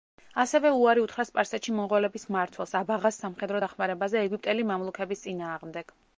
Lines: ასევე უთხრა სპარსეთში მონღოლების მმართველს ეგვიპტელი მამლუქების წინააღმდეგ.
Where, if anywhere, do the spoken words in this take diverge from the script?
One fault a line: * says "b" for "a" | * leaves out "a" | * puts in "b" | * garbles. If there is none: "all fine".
* puts in "უარი"
* puts in "აბაღას სამხედრო დახმარებაზე"